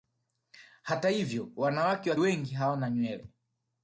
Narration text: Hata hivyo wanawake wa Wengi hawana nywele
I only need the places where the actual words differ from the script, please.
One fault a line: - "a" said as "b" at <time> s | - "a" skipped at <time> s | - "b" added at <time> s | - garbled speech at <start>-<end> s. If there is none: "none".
none